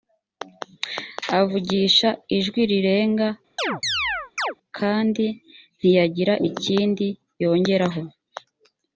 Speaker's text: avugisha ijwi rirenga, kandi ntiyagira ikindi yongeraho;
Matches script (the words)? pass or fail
pass